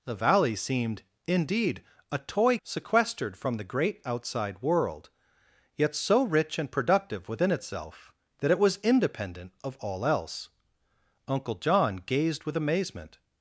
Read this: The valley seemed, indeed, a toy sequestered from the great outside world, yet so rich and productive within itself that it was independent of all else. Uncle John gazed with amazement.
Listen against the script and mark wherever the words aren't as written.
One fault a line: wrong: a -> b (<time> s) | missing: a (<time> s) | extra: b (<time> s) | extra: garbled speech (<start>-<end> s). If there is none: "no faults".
no faults